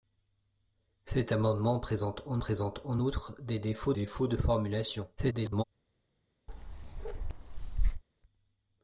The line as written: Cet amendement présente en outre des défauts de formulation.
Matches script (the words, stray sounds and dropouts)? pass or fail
fail